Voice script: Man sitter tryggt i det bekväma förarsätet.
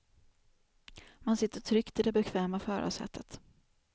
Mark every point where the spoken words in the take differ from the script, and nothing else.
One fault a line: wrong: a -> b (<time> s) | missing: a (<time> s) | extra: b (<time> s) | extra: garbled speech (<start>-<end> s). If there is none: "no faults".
no faults